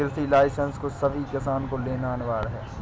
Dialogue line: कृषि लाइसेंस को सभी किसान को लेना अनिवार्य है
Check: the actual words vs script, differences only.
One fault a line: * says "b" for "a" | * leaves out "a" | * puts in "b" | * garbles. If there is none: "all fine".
all fine